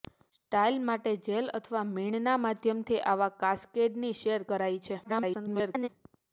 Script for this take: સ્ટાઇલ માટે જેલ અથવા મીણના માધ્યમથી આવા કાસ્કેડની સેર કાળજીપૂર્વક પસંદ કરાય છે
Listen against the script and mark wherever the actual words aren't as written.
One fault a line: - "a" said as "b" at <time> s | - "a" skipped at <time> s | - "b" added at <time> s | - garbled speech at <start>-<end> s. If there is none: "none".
- "કાળજીપૂર્વક પસંદ" skipped at 4.5 s
- garbled speech at 5.0-5.9 s